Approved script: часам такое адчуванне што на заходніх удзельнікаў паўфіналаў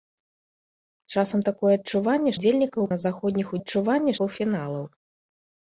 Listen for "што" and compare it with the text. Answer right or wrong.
wrong